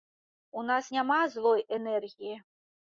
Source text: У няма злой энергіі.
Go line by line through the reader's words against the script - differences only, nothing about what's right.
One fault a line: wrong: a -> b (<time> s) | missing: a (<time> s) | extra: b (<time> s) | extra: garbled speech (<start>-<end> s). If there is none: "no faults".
extra: нас (0.7 s)